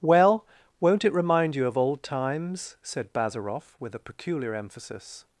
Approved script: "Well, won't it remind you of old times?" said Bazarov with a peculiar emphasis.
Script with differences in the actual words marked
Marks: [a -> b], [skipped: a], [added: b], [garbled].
"Well, won't it remind you of old times?" said Bazarov with a peculiar emphasis.